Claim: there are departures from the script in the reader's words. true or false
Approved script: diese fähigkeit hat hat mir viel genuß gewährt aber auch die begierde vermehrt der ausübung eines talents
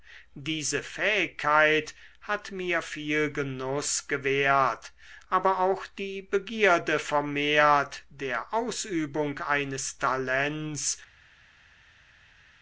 true